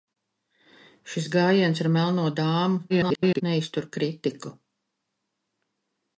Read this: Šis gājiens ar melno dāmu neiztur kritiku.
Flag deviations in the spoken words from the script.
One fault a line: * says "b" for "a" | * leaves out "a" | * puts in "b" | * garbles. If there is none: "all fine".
* garbles